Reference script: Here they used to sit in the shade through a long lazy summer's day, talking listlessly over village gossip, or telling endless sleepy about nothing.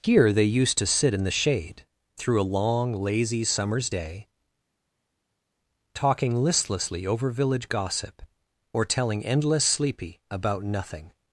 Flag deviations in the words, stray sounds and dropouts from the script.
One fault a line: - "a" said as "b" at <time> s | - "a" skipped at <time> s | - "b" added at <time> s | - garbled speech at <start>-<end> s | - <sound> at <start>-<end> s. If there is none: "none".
none